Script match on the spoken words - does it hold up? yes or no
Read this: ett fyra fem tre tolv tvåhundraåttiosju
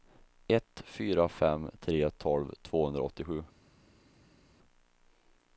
yes